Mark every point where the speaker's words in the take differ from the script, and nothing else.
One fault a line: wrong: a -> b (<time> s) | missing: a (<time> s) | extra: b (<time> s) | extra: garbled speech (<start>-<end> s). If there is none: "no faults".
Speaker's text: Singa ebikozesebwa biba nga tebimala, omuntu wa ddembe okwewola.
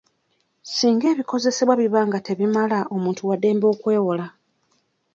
no faults